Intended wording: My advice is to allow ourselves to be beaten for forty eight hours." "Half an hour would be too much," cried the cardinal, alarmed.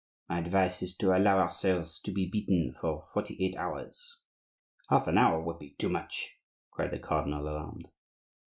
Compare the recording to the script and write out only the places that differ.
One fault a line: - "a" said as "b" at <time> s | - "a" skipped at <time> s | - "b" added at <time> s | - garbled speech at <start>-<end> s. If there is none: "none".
none